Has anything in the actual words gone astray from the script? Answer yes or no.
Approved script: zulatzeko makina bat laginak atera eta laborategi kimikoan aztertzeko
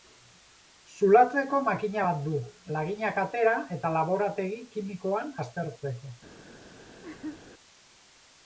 yes